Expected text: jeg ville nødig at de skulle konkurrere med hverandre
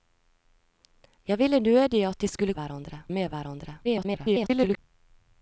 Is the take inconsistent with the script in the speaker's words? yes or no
yes